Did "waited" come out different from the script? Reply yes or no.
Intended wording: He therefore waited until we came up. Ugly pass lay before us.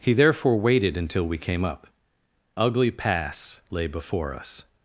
no